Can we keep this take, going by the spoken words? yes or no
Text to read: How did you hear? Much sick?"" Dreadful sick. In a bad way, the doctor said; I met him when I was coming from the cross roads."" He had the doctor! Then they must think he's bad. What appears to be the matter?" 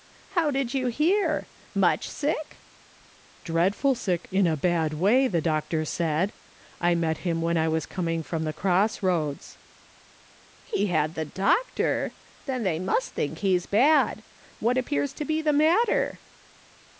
yes